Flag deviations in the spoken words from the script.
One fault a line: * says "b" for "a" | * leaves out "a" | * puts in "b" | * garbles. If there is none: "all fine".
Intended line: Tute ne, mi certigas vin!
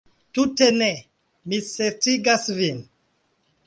all fine